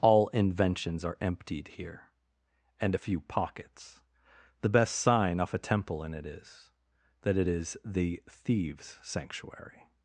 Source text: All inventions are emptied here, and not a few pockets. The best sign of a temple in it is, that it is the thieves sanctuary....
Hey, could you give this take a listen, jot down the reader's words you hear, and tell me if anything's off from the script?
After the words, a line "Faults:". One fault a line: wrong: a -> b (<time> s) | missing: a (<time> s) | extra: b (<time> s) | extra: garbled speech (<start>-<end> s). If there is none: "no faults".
All inventions are emptied here, and a few pockets. The best sign off a temple in it is, that it is the thieves sanctuary....
Faults:
missing: not (3.0 s)
wrong: of -> off (5.4 s)